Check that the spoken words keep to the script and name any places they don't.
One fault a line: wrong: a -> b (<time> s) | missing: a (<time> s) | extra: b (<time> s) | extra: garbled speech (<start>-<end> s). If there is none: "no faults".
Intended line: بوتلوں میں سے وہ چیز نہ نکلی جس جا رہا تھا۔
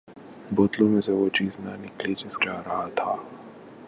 no faults